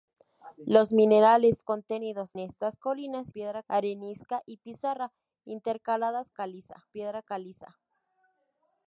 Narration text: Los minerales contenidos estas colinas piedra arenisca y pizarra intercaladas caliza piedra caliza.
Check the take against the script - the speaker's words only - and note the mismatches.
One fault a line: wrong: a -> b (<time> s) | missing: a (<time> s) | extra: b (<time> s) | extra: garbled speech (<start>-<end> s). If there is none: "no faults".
no faults